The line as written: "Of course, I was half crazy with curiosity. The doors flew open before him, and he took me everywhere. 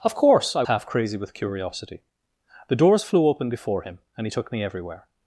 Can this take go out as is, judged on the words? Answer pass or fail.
fail